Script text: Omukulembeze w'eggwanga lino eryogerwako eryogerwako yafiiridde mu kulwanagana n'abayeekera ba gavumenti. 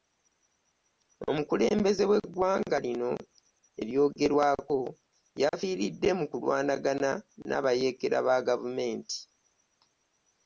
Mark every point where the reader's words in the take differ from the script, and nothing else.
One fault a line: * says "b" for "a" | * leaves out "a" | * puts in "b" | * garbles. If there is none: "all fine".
* leaves out "eryogerwako"